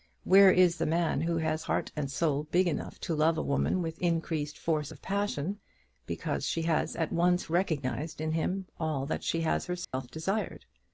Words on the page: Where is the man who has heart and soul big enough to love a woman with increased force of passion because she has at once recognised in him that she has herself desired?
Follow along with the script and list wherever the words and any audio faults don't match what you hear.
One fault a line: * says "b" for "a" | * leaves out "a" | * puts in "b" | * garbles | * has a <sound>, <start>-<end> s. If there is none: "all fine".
* puts in "all"
* has a dropout, 9.8-9.9 s